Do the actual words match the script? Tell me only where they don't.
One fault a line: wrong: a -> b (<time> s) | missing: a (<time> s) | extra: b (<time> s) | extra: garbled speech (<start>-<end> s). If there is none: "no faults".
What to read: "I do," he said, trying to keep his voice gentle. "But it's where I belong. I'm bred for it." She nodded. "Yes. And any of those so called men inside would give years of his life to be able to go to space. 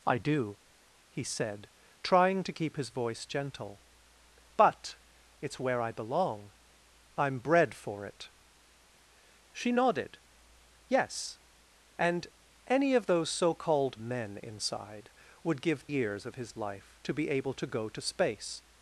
no faults